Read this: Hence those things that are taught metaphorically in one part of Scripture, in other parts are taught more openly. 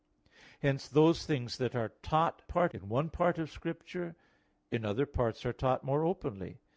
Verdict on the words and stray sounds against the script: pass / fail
fail